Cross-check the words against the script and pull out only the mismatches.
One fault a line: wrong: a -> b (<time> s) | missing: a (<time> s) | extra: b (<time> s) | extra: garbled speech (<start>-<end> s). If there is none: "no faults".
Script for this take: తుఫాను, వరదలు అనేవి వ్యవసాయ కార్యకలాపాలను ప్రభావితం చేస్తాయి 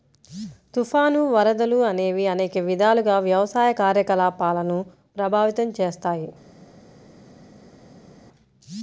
extra: అనేక విధాలుగా (2.3 s)